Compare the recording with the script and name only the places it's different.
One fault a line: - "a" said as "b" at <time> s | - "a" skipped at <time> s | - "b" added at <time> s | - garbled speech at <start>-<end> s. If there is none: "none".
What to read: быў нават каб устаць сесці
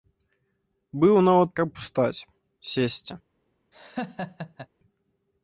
none